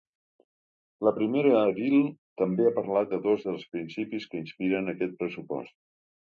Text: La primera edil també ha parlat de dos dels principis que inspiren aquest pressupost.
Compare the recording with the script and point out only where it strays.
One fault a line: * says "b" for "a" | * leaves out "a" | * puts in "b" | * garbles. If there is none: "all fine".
all fine